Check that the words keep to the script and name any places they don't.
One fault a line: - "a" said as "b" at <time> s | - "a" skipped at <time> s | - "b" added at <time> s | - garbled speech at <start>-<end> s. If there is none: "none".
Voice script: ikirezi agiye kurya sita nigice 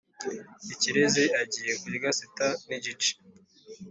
none